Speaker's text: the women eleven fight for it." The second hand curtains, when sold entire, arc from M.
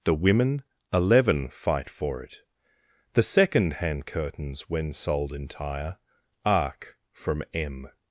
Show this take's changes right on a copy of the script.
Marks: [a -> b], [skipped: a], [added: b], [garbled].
the women eleven fight for it." The second hand curtains, when sold entire, arc from M.